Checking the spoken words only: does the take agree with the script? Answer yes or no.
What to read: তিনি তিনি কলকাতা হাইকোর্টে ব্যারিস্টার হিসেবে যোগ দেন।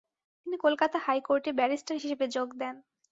no